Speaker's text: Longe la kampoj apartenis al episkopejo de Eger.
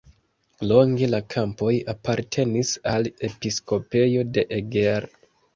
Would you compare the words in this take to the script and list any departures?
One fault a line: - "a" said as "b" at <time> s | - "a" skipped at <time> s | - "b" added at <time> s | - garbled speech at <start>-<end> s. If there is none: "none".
none